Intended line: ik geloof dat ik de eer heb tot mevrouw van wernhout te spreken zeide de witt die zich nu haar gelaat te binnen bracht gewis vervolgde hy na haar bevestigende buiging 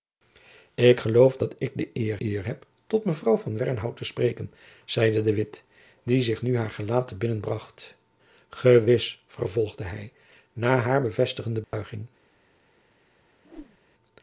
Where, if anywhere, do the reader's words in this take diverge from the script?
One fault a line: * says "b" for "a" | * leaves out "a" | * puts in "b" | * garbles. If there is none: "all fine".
* puts in "eer"